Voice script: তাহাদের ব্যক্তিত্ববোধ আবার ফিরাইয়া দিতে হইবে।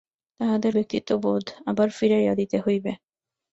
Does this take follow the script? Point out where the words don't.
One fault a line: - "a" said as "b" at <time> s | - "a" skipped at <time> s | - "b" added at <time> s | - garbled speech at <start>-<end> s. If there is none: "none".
none